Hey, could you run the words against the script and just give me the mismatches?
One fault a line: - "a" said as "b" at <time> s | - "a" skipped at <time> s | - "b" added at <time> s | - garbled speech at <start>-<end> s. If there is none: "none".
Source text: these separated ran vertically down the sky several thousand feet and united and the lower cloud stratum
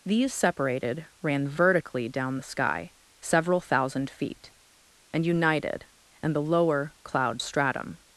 none